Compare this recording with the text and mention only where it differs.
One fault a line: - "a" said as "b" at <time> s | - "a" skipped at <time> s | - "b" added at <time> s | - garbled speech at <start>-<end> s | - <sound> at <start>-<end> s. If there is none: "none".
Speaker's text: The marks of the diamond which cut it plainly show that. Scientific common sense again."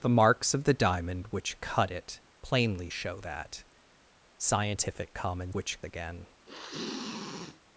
- "sense" said as "which" at 5.5 s
- sniff at 6.5-7.6 s